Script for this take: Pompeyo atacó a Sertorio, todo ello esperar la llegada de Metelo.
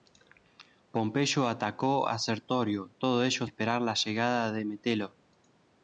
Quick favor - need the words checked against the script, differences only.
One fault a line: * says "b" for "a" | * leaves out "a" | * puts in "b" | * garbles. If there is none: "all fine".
all fine